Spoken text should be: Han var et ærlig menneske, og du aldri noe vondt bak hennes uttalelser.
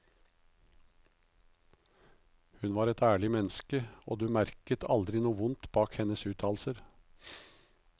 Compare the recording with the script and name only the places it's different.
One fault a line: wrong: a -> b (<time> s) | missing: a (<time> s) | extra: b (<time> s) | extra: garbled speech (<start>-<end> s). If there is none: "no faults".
wrong: Han -> Hun (2.6 s)
extra: merket (4.3 s)